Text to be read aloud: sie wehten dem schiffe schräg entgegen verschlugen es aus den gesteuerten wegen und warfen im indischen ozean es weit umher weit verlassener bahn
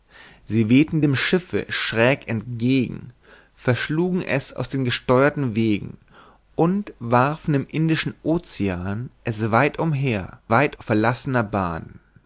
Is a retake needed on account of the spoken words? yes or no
no